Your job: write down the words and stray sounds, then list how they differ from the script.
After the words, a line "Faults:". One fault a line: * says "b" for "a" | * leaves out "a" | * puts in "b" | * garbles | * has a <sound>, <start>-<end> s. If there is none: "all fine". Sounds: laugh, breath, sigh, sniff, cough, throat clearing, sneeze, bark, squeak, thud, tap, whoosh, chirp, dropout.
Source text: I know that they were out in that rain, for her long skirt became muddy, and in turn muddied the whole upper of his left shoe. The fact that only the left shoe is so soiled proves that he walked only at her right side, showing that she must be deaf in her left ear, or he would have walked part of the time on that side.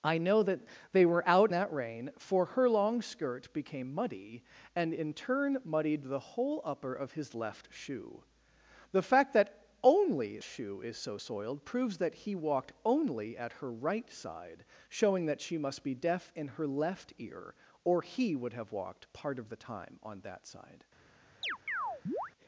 I know that they were out that rain, for her long skirt became muddy, and in turn muddied the whole upper of his left shoe. The fact that only shoe is so soiled proves that he walked only at her right side, showing that she must be deaf in her left ear, or he would have walked part of the time on that side.
Faults:
* leaves out "in"
* leaves out "the left"
* has a chirp, 21.4-22.3 s